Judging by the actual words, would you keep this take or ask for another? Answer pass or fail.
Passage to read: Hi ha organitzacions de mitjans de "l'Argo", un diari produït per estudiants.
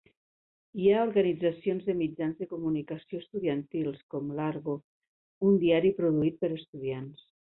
fail